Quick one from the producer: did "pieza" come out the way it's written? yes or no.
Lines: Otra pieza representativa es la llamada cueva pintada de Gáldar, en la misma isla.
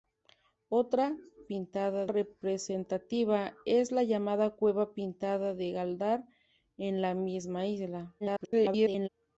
no